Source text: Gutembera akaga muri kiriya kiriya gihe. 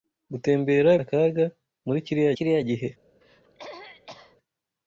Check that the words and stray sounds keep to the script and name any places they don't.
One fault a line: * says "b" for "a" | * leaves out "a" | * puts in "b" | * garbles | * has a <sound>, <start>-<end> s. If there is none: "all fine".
* has a throat clearing, 3.2-4.4 s